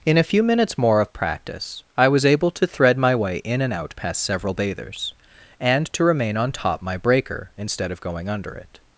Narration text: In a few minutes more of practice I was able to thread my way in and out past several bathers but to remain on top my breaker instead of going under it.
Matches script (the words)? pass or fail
fail